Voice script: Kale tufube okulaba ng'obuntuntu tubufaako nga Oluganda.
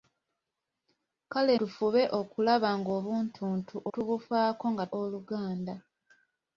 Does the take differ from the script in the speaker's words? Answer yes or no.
no